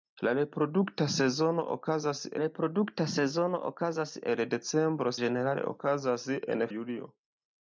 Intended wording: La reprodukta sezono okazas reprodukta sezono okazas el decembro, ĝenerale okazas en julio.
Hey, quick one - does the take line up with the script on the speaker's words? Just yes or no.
yes